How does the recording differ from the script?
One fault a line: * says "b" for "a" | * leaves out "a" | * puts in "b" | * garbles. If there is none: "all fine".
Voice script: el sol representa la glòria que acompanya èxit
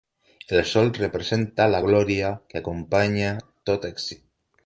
* puts in "tot"